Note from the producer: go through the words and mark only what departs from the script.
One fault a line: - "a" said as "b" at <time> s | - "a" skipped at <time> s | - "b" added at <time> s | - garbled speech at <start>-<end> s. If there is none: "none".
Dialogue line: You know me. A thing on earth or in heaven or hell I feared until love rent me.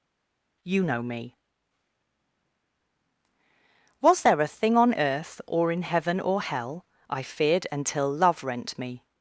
- "Was there" added at 4.0 s